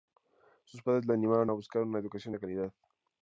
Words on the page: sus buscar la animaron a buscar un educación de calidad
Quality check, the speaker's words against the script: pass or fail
fail